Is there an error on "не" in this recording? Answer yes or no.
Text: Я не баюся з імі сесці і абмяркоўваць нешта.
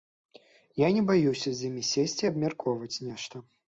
no